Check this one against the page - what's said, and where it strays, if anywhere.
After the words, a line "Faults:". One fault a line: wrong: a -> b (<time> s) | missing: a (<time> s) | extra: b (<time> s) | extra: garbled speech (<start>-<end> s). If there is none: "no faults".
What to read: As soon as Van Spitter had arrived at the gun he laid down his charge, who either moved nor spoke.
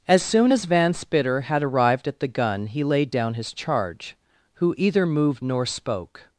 As soon as Van Spitter had arrived at the gun he laid down his charge, who either moved nor spoke.
Faults:
no faults